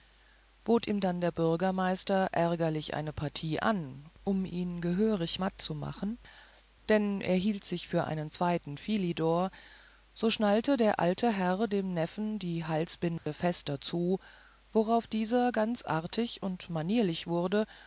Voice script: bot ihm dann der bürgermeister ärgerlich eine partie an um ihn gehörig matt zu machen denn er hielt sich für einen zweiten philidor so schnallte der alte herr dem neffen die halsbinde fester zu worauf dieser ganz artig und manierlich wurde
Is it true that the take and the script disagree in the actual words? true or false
false